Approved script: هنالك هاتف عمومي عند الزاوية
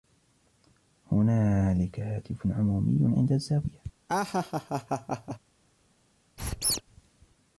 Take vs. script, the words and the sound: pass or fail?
fail